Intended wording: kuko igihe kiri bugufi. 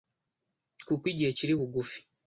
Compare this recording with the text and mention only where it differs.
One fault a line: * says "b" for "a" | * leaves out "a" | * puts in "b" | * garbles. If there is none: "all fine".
all fine